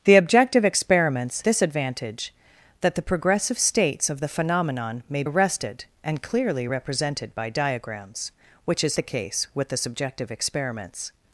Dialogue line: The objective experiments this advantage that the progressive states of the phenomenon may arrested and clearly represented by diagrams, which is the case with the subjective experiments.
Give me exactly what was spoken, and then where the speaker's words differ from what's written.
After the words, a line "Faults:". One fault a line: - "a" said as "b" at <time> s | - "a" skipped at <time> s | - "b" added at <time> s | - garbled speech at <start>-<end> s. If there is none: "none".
The objective experiments this advantage that the progressive states of the phenomenon may arrested and clearly represented by diagrams, which is the case with the subjective experiments.
Faults:
none